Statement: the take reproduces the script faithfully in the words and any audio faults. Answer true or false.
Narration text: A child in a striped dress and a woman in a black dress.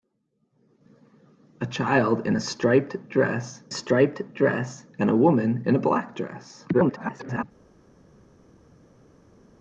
false